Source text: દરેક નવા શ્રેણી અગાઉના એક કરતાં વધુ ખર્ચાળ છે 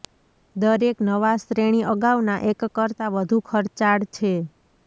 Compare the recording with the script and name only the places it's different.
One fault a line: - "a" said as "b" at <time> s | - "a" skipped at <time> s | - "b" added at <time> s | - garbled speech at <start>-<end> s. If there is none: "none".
none